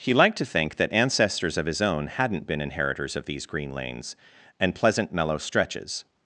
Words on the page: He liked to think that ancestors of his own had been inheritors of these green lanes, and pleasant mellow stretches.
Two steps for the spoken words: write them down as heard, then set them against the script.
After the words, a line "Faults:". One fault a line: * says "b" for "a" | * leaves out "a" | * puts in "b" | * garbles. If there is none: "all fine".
He liked to think that ancestors of his own hadn't been inheritors of these green lanes, and pleasant mellow stretches.
Faults:
* says "hadn't" for "had"